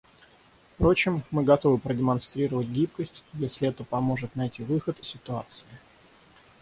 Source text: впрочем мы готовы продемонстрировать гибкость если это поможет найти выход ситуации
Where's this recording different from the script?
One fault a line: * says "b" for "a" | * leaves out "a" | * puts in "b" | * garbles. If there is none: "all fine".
all fine